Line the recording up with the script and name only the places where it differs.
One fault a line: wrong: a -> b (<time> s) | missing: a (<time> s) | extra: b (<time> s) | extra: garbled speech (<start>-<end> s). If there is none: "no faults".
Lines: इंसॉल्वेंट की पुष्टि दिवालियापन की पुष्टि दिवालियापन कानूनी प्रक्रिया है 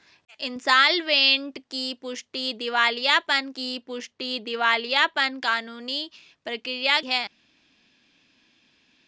no faults